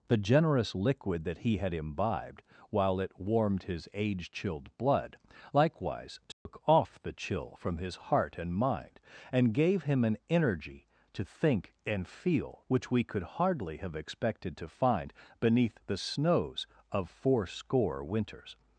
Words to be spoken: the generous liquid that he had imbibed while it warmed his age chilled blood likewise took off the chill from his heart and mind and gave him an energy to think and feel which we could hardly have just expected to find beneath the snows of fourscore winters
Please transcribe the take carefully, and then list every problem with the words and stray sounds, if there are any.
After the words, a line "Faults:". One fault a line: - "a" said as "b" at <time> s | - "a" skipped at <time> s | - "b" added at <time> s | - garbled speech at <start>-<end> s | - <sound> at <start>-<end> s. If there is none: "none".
the generous liquid that he had imbibed while it warmed his age chilled blood likewise took off the chill from his heart and mind and gave him an energy to think and feel which we could hardly have expected to find beneath the snows of fourscore winters
Faults:
- dropout at 6.3-6.5 s
- "just" skipped at 13.9 s